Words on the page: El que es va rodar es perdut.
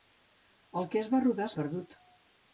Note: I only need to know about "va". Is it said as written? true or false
true